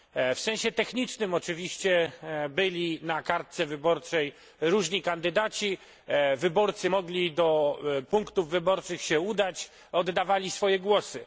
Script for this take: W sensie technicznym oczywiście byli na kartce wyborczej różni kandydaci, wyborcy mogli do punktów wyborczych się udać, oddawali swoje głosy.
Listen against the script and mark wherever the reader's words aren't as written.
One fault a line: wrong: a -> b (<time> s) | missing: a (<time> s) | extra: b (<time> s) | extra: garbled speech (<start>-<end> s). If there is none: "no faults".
no faults